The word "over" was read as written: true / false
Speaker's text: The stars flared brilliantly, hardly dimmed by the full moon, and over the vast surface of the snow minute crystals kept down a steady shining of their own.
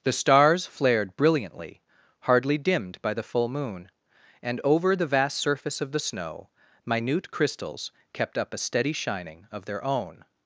true